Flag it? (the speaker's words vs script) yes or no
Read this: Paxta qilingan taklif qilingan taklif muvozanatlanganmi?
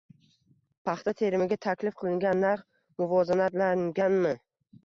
yes